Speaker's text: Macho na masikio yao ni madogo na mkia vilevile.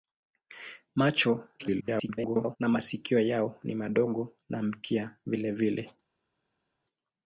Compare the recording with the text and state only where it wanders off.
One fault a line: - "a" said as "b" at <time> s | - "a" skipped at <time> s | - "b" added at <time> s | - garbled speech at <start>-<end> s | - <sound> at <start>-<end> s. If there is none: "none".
- garbled speech at 1.6-2.6 s